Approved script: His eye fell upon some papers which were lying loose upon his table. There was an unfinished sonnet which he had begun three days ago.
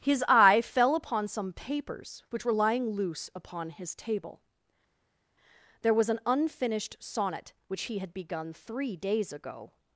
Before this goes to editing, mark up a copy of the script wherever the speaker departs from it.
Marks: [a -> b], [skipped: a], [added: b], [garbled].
His eye fell upon some papers which were lying loose upon his table. There was an unfinished sonnet which he had begun three days ago.